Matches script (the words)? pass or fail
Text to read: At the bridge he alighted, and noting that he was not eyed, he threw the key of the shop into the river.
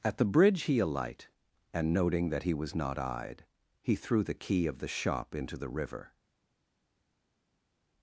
fail